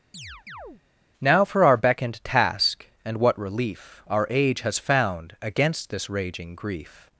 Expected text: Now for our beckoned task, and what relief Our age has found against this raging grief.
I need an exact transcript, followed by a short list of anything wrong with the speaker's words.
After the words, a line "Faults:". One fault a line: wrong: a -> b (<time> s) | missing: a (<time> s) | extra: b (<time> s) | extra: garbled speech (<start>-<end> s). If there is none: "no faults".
Now for our beckoned task, and what relief Our age has found against this raging grief.
Faults:
no faults